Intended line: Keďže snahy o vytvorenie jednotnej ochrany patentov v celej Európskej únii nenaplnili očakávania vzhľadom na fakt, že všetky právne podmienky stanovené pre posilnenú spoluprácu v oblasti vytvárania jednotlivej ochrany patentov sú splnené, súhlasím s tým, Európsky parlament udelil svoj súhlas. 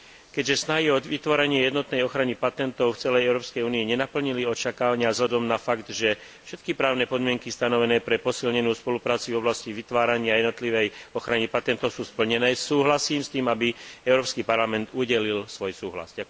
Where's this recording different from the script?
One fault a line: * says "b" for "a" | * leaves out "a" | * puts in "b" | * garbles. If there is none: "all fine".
* puts in "aby"